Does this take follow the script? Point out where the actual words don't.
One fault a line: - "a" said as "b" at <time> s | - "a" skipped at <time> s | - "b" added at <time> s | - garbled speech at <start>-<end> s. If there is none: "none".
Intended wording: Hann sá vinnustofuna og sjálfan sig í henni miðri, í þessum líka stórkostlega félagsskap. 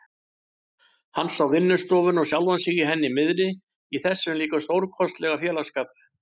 none